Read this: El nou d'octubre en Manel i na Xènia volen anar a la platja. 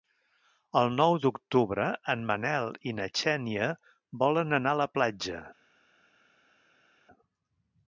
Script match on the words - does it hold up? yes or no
yes